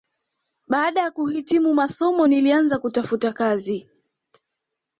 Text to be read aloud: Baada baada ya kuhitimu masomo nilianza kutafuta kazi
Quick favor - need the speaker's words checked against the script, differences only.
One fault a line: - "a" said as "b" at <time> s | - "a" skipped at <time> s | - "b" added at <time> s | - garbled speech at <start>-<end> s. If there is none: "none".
- "baada" skipped at 1.0 s